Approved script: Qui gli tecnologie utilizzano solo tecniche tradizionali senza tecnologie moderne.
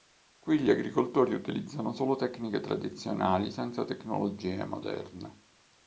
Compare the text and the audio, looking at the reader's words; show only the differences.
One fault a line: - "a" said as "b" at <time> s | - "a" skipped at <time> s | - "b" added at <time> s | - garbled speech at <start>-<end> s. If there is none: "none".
- "tecnologie" said as "agricoltori" at 0.7 s